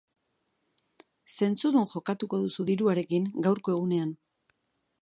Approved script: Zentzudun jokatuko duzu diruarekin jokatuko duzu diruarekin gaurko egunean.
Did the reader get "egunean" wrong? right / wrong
right